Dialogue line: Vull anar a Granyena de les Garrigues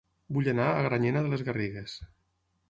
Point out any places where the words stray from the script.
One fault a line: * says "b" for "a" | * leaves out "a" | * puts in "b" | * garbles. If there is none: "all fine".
all fine